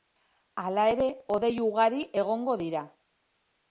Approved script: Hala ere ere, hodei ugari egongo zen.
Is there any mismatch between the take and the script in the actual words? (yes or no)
yes